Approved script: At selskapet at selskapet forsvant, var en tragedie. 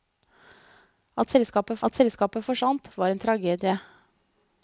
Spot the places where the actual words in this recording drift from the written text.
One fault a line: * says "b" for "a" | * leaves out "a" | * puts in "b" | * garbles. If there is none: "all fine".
all fine